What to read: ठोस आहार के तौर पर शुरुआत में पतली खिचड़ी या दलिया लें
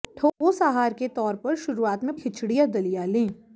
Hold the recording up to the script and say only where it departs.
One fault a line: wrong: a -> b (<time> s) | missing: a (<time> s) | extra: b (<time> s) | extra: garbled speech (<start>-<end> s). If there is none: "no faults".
missing: पतली (2.1 s)